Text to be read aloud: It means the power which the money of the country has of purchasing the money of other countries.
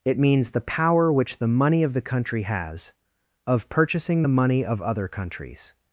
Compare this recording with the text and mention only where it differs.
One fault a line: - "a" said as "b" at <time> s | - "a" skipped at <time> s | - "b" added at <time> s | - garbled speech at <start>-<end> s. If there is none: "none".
none